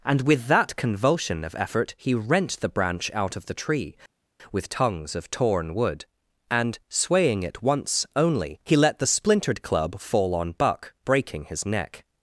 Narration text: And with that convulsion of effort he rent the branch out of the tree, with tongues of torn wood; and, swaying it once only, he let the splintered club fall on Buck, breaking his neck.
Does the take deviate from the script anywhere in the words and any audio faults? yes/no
no